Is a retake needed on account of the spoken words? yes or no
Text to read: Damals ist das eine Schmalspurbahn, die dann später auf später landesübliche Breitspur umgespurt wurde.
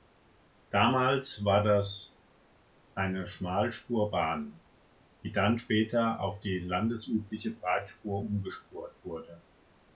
yes